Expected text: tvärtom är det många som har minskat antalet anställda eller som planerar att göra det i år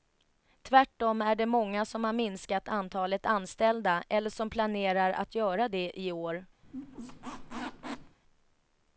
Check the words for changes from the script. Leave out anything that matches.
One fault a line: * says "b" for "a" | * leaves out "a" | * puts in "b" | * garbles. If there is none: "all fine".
all fine